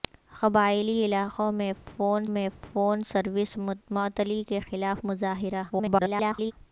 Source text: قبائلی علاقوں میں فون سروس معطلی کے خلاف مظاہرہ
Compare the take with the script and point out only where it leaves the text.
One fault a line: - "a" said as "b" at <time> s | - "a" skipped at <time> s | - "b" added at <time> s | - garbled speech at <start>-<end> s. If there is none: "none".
- "میں فون" added at 2.3 s
- garbled speech at 5.7-6.5 s